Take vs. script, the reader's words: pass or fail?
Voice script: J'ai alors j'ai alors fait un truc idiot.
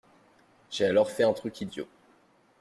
fail